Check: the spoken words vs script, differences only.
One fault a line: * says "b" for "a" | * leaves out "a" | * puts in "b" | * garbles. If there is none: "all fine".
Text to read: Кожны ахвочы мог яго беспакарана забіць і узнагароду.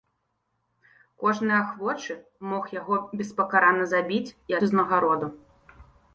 all fine